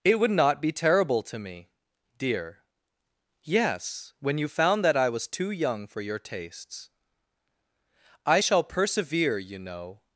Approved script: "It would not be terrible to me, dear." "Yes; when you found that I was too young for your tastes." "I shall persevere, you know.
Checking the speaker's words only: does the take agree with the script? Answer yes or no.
yes